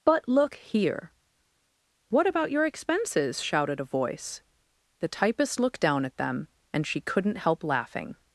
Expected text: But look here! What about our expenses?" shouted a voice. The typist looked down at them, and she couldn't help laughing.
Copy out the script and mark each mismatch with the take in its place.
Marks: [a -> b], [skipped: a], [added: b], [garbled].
But look here! What about [our -> your] expenses?" shouted a voice. The typist looked down at them, and she couldn't help laughing.